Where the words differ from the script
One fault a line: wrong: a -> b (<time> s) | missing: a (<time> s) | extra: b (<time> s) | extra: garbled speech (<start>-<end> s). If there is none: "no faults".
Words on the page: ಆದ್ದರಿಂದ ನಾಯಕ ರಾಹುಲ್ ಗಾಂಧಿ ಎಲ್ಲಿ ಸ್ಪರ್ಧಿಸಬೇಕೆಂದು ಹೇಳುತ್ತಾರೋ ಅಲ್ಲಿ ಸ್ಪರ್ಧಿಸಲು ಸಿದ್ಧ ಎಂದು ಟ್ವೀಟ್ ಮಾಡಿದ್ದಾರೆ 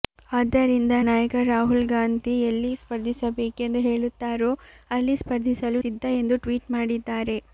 no faults